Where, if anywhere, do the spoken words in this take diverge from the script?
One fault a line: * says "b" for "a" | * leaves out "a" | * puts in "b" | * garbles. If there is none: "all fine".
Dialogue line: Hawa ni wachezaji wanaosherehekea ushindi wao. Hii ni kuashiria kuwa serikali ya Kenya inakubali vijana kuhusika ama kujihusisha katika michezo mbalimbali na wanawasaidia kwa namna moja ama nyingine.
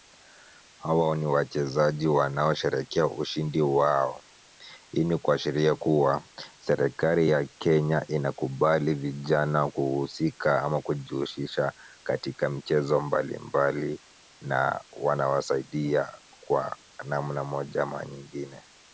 all fine